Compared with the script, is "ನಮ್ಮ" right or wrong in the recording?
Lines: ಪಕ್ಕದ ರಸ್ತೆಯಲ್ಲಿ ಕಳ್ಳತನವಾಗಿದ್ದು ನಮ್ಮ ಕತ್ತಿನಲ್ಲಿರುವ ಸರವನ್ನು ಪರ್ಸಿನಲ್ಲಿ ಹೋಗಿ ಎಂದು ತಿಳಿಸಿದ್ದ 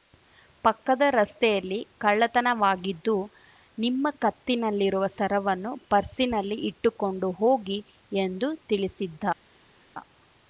wrong